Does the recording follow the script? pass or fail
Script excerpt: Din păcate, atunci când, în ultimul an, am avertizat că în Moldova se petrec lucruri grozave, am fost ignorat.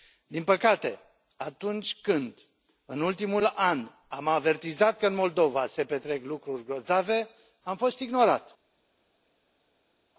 pass